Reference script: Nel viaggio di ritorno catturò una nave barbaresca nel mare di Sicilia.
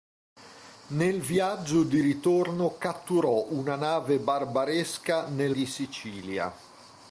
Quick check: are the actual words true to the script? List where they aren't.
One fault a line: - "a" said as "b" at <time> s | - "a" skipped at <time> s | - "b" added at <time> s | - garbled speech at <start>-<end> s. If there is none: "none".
- "mare" skipped at 5.6 s